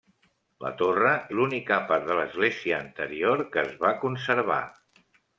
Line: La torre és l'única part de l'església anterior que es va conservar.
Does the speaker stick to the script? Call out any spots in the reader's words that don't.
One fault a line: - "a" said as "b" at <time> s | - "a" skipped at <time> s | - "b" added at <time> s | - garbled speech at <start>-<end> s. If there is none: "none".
- "és" skipped at 1.1 s